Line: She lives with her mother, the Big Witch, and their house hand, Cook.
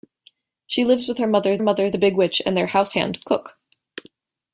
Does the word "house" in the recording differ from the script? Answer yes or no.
no